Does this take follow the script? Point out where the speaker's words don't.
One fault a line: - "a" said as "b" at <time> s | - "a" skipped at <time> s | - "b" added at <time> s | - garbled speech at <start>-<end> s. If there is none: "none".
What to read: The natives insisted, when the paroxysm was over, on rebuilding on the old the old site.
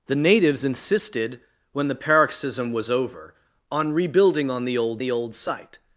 none